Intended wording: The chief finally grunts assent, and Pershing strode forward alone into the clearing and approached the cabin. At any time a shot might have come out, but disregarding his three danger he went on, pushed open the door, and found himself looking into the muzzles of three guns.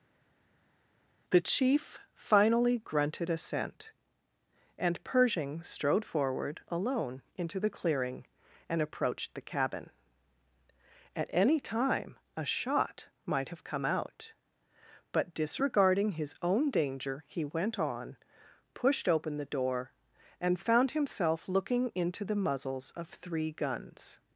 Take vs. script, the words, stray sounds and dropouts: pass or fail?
fail